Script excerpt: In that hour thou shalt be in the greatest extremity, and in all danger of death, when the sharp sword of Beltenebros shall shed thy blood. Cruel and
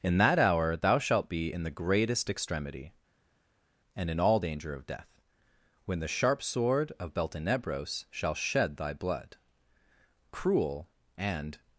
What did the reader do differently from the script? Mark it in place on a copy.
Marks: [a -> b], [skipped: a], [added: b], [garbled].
In that hour thou shalt be in the greatest extremity, and in all danger of death, when the sharp sword of Beltenebros shall shed thy blood. Cruel and